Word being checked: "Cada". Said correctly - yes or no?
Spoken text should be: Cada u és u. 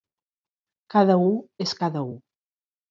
yes